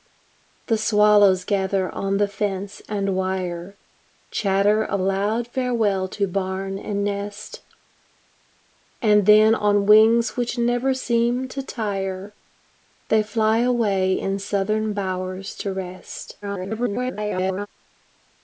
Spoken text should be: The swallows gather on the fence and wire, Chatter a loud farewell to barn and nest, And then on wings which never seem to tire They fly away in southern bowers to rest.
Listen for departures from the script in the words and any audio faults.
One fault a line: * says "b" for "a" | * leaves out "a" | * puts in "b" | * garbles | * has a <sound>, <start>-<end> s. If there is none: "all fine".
* garbles